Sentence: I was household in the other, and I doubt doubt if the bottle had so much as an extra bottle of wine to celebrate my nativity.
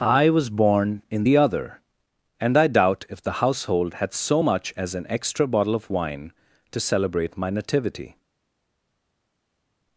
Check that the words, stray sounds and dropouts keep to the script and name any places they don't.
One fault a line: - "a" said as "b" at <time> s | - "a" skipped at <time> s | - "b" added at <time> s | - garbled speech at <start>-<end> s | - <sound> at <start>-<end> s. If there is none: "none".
- "household" said as "born" at 0.5 s
- "doubt" skipped at 3.0 s
- "bottle" said as "household" at 3.4 s